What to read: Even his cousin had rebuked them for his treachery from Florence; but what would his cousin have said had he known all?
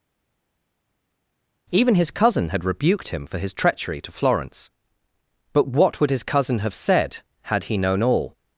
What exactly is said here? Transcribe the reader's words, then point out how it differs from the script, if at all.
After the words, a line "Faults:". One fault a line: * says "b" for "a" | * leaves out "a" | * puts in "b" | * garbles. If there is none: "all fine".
Even his cousin had rebuked him for his treachery to Florence; but what would his cousin have said had he known all?
Faults:
* says "him" for "them"
* says "to" for "from"